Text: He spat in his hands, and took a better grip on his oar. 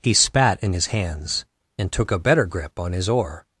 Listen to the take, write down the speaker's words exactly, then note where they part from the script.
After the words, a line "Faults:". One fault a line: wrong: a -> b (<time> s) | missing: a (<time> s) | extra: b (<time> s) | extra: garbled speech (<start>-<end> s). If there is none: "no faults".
He spat in his hands, and took a better grip on his oar.
Faults:
no faults